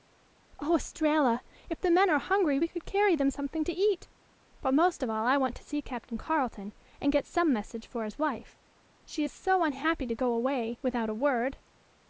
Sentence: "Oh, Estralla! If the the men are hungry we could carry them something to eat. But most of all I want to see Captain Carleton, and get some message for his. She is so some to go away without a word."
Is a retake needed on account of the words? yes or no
yes